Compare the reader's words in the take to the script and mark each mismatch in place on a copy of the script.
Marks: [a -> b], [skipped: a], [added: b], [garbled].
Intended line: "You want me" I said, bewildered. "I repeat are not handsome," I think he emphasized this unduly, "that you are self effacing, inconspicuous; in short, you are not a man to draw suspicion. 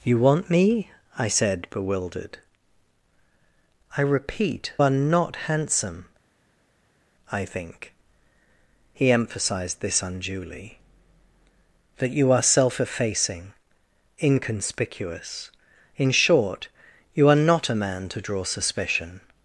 "You want me" I said, bewildered. "I repeat are not handsome," I think he emphasized this unduly, "that you are self effacing, inconspicuous; in short, you are not a man to draw suspicion.